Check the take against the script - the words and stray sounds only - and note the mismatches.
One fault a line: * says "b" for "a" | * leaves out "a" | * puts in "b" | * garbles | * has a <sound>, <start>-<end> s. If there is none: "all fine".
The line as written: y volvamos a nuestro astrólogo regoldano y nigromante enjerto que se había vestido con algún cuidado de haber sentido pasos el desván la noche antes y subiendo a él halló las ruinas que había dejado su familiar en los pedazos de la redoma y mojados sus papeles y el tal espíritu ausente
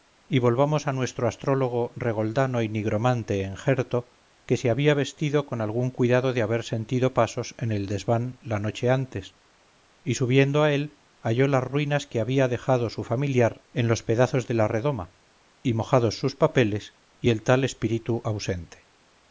* puts in "en"